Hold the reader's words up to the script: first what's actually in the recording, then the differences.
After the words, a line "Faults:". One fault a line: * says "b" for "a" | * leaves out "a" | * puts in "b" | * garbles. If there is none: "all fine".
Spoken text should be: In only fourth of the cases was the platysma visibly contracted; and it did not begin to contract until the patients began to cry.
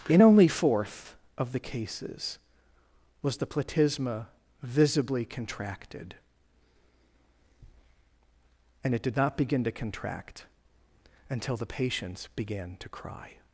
In only fourth of the cases was the platysma visibly contracted; and it did not begin to contract until the patients began to cry.
Faults:
all fine